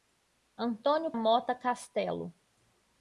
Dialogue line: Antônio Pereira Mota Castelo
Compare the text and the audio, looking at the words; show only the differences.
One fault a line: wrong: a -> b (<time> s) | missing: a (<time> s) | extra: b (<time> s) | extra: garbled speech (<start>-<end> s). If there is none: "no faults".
missing: Pereira (1.1 s)